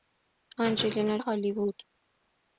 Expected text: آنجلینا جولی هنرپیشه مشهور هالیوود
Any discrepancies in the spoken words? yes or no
yes